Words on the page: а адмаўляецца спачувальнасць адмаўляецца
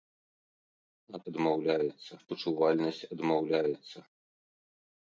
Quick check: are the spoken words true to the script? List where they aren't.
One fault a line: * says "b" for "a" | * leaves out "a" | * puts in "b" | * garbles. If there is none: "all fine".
all fine